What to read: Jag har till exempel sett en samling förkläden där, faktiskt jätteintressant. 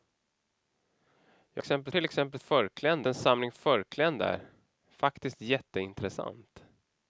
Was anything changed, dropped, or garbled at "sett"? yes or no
yes